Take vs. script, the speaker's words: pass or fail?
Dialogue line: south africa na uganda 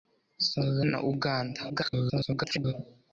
fail